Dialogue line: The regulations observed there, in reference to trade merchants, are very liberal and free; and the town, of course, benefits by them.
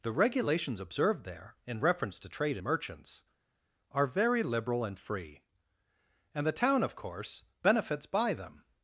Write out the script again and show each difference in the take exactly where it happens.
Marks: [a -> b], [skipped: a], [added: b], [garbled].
The regulations observed there, in reference to trade merchants, are very liberal and free; and the town, of course, benefits by them.